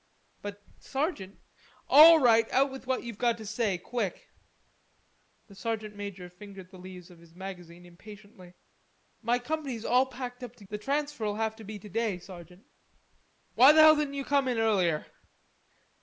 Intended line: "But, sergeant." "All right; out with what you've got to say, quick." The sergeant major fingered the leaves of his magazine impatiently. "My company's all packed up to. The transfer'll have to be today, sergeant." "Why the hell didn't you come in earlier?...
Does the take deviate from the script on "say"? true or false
false